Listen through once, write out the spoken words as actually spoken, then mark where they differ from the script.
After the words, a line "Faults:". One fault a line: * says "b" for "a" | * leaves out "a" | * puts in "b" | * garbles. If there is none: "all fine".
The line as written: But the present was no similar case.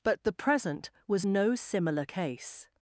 But the present was no similar case.
Faults:
all fine